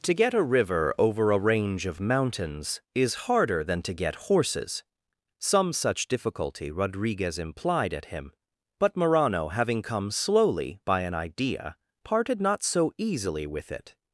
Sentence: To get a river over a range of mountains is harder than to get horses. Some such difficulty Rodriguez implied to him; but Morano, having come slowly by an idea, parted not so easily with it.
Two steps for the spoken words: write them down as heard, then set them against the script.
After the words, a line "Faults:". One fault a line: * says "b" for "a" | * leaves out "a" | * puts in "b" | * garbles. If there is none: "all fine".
To get a river over a range of mountains is harder than to get horses. Some such difficulty Rodriguez implied at him; but Morano, having come slowly by an idea, parted not so easily with it.
Faults:
* says "at" for "to"